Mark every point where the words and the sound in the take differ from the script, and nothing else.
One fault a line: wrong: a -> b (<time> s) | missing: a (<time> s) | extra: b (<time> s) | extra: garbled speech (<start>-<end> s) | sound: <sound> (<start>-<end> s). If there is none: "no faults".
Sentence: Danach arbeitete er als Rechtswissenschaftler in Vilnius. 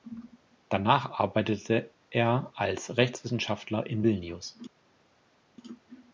no faults